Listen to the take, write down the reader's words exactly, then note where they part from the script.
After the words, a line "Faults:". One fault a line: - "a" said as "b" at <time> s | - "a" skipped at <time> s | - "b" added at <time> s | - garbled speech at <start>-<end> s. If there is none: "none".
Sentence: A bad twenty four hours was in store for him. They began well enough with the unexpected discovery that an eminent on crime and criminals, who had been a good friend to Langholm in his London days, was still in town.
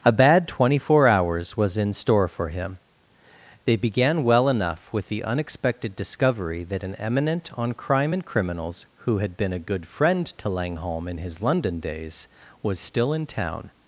A bad twenty four hours was in store for him. They began well enough with the unexpected discovery that an eminent on crime and criminals, who had been a good friend to Langholm in his London days, was still in town.
Faults:
none